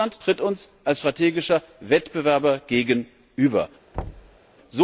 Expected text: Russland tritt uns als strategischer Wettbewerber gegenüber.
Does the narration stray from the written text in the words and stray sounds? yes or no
yes